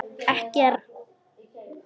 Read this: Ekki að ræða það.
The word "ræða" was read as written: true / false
false